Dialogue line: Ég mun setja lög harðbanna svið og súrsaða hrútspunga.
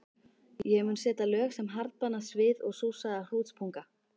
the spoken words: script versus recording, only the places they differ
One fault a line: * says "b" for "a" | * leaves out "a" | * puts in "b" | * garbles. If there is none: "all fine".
* puts in "sem"